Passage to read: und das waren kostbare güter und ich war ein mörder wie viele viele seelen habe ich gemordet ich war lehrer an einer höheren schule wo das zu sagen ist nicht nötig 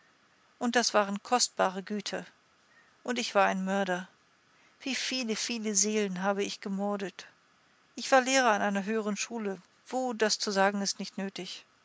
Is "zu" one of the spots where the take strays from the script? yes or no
no